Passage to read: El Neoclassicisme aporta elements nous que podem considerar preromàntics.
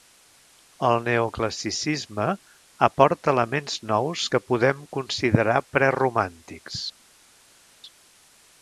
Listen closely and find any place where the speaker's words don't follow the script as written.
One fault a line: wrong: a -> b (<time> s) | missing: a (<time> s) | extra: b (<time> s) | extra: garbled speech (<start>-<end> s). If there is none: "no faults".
no faults